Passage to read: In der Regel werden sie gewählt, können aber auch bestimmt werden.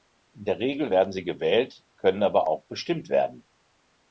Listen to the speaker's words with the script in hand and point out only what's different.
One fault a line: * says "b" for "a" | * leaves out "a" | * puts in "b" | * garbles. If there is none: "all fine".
all fine